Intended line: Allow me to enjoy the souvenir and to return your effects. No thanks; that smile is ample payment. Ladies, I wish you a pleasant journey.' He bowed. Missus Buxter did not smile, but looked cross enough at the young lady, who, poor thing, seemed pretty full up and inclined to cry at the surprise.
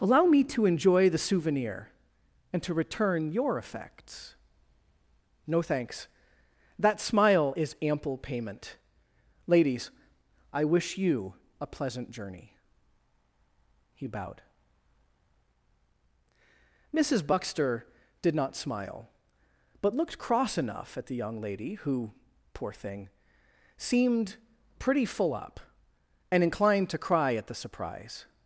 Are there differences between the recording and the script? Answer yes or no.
no